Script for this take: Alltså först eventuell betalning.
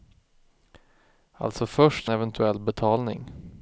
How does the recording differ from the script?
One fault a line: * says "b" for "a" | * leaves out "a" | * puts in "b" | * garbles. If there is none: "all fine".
all fine